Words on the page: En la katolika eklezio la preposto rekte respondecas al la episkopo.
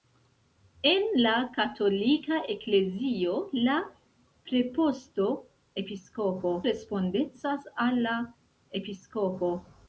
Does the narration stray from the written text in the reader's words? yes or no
yes